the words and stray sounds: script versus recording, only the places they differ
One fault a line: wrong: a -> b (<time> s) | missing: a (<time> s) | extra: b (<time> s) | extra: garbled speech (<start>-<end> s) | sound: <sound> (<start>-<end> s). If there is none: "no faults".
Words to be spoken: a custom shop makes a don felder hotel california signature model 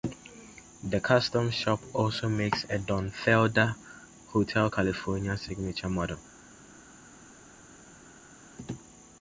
wrong: a -> the (0.8 s)
extra: also (1.9 s)